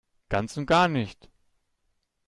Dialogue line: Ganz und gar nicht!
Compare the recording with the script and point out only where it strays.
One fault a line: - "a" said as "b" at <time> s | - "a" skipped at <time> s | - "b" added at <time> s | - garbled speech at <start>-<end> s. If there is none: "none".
none